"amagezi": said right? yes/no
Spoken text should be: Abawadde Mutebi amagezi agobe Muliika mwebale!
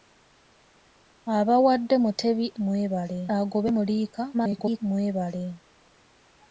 no